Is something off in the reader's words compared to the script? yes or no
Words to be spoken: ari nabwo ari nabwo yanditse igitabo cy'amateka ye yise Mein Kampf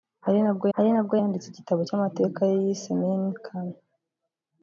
no